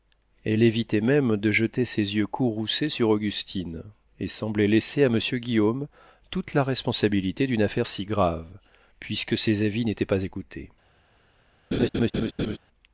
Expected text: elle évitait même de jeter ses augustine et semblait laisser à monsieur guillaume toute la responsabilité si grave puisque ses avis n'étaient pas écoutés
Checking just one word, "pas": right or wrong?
right